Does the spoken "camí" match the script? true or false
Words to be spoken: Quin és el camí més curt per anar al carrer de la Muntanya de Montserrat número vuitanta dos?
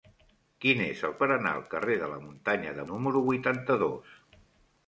false